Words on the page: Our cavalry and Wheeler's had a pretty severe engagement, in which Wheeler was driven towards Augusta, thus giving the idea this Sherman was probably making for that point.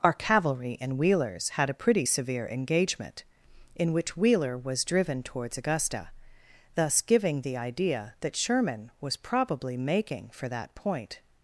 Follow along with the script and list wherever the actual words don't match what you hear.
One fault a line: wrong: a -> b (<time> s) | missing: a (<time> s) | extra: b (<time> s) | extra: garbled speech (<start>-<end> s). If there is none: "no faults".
wrong: this -> that (8.2 s)